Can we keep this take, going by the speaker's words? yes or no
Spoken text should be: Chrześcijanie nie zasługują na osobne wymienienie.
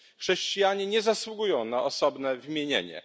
yes